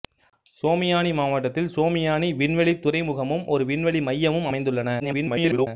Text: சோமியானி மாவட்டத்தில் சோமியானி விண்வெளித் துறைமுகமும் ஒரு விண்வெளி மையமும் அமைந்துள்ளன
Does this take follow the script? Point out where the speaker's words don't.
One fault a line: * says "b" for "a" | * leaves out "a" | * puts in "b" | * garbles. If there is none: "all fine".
* garbles